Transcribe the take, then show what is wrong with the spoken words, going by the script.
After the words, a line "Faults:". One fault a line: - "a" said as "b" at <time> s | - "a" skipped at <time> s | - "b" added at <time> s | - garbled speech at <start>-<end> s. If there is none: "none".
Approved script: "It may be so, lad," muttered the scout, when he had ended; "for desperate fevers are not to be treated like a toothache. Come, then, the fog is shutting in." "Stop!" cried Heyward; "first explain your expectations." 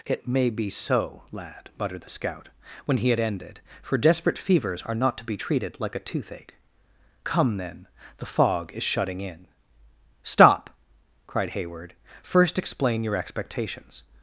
"It may be so, lad," muttered the scout, when he had ended; "for desperate fevers are not to be treated like a toothache. Come, then, the fog is shutting in." "Stop!" cried Heyward; "first explain your expectations."
Faults:
none